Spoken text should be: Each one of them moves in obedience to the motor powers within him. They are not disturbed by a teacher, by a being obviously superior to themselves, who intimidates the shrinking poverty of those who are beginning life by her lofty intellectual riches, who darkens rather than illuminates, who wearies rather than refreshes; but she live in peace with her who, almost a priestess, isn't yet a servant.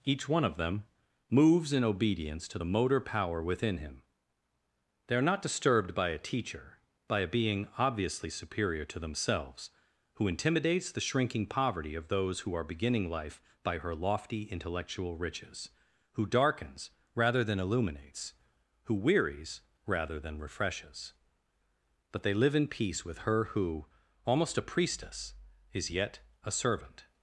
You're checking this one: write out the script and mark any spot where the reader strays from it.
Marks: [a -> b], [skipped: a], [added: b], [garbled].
Each one of them moves in obedience to the motor [powers -> power] within him. They are not disturbed by a teacher, by a being obviously superior to themselves, who intimidates the shrinking poverty of those who are beginning life by her lofty intellectual riches, who darkens rather than illuminates, who wearies rather than refreshes; but [she -> they] live in peace with her who, almost a priestess, [isn't -> is] yet a servant.